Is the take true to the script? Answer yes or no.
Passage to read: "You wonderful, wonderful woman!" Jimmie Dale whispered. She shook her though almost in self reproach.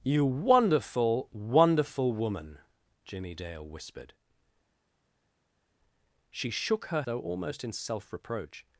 yes